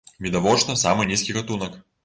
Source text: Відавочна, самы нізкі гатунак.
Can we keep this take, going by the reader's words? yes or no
yes